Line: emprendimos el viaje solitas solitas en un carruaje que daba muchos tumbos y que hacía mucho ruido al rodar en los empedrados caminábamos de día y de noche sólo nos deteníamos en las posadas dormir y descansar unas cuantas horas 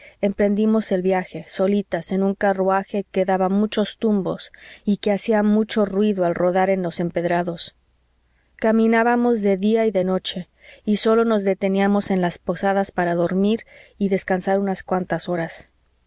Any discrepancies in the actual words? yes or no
yes